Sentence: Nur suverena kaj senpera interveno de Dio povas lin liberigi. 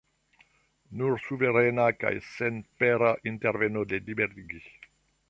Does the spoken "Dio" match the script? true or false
false